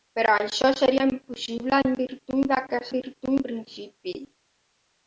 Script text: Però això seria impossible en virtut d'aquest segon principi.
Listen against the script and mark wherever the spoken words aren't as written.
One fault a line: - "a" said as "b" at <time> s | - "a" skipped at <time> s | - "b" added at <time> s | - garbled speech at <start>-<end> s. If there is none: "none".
- "segon" said as "virtut" at 3.0 s